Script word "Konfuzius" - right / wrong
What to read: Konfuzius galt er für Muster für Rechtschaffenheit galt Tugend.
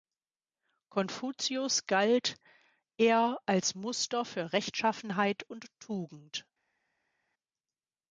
right